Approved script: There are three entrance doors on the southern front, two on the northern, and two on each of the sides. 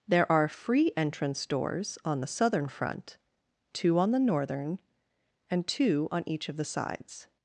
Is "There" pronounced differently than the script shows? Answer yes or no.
no